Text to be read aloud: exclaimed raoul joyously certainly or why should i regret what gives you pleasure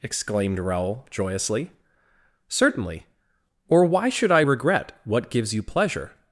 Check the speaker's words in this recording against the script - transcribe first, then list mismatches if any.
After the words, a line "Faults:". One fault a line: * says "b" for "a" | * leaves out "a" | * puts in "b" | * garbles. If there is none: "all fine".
exclaimed raoul joyously certainly or why should i regret what gives you pleasure
Faults:
all fine